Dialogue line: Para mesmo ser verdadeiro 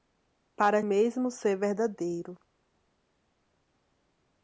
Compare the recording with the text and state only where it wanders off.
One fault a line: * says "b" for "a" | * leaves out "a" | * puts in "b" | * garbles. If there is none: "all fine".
all fine